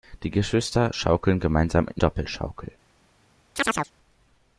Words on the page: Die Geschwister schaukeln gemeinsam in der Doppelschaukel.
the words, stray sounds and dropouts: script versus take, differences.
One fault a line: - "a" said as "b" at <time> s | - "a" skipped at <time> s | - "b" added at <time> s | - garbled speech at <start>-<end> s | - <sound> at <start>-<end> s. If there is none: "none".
- "der" skipped at 2.0 s
- chirp at 3.6-3.9 s